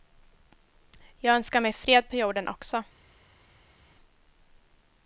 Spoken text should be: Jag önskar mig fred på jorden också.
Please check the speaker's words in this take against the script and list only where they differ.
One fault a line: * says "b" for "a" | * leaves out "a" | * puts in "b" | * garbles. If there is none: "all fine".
all fine